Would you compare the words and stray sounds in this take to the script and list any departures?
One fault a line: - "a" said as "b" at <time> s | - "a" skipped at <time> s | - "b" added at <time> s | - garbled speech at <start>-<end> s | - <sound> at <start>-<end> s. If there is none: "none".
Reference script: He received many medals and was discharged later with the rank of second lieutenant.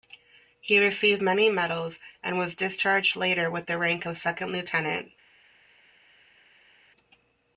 none